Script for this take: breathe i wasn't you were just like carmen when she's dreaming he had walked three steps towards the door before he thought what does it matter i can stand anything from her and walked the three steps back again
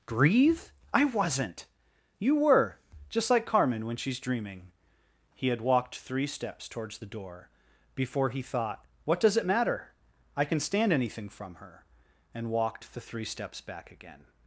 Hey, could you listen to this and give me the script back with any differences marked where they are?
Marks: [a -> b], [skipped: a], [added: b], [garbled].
breathe i wasn't you were just like carmen when she's dreaming he had walked three steps towards the door before he thought what does it matter i can stand anything from her and walked the three steps back again